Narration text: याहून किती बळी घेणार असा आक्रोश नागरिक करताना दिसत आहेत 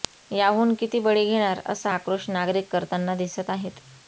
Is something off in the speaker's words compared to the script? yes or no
no